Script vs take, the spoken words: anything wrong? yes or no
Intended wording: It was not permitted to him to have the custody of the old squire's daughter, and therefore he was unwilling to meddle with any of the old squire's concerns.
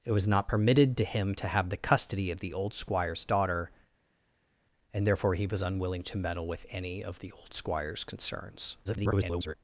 yes